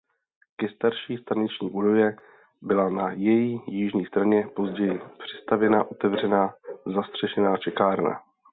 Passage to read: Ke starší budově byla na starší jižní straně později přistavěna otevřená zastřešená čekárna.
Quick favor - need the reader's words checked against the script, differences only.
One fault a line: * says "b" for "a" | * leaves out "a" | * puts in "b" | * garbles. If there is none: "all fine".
* puts in "staniční"
* says "její" for "starší"